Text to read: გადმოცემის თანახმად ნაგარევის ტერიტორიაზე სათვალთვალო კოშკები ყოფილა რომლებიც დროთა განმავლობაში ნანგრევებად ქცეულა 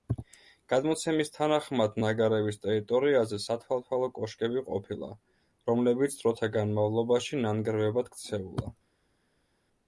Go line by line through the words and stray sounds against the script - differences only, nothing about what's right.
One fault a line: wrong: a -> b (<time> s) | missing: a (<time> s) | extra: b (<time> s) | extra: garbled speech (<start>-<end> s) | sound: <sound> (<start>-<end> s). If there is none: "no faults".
no faults